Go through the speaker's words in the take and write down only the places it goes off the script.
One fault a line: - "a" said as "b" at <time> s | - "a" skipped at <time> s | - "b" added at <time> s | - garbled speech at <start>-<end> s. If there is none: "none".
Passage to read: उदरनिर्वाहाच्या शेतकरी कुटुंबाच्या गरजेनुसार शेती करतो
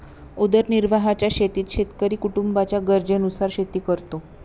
- "शेतीत" added at 1.3 s